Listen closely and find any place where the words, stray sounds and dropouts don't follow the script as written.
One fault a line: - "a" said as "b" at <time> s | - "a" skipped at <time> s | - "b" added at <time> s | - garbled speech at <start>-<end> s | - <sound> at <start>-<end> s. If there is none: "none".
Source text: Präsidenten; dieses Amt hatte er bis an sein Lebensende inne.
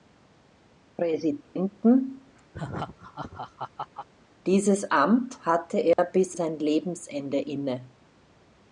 - laugh at 2.5-4.1 s
- dropout at 5.9-6.0 s
- "an" skipped at 6.4 s